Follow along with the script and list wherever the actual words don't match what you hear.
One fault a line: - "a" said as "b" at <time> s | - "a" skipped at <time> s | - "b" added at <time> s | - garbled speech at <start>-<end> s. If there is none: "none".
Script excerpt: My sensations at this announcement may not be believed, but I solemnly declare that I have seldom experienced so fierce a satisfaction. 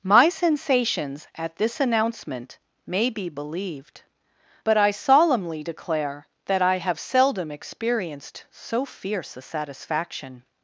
- "not" skipped at 3.1 s